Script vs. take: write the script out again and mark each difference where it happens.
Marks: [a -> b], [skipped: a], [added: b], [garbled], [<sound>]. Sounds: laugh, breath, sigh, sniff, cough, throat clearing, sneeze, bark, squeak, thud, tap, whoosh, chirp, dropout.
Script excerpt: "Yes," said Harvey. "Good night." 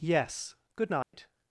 "Yes," [skipped: said Harvey.] "Good night." [dropout]